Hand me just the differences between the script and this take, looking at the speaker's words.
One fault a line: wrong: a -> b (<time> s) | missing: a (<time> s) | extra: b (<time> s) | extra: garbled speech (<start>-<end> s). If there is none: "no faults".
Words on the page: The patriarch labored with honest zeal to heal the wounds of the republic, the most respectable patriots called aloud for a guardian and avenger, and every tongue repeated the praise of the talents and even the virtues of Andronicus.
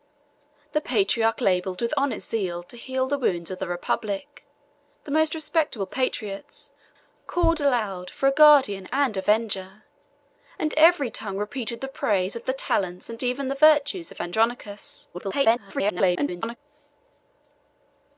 extra: garbled speech (15.1-16.6 s)